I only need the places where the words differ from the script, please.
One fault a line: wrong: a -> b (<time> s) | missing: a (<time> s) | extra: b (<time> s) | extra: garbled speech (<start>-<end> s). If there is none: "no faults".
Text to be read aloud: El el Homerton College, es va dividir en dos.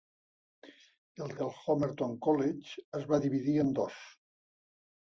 no faults